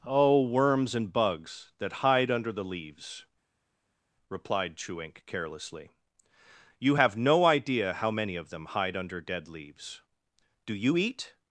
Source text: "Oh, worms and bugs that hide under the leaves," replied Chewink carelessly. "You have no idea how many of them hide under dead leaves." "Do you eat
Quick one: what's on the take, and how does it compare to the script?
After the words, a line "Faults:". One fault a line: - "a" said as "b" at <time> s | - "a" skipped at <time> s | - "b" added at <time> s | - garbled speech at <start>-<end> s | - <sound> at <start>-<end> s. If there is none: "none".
"Oh, worms and bugs that hide under the leaves," replied Chewink carelessly. "You have no idea how many of them hide under dead leaves." "Do you eat
Faults:
none